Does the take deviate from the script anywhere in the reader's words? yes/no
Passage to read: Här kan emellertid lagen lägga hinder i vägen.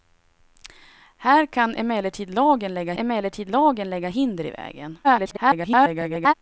yes